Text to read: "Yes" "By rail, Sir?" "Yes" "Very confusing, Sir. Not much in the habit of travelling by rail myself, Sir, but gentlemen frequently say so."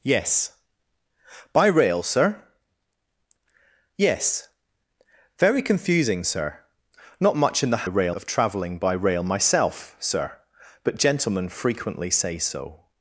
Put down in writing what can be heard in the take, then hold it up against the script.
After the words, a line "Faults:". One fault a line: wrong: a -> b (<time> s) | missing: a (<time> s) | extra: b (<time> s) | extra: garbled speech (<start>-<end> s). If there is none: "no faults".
"Yes" "By rail, Sir?" "Yes" "Very confusing, Sir. Not much in the rail of travelling by rail myself, Sir, but gentlemen frequently say so."
Faults:
wrong: habit -> rail (7.8 s)